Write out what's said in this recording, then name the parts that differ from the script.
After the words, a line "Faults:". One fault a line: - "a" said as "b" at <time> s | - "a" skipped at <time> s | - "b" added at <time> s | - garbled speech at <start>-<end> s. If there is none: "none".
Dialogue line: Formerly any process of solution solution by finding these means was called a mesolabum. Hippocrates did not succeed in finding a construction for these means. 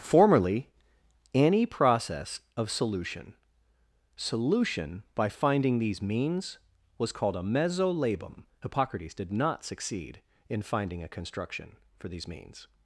Formerly any process of solution solution by finding these means was called a mesolabum. Hippocrates did not succeed in finding a construction for these means.
Faults:
none